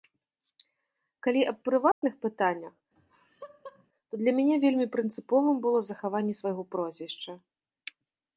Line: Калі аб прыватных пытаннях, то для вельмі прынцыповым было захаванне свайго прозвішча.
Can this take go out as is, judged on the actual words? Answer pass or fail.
fail